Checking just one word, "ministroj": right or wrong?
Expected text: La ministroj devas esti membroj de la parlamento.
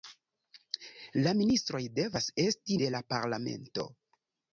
right